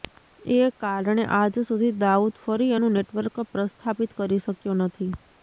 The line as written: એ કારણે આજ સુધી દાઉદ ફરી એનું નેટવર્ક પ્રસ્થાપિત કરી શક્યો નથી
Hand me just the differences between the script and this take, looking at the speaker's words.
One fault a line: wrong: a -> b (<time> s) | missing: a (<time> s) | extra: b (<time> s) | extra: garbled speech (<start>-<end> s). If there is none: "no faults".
no faults